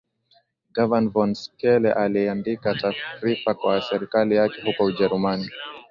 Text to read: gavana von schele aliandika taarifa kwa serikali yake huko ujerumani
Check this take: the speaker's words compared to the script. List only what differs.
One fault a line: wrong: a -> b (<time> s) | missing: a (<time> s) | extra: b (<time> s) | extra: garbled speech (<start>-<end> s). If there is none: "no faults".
no faults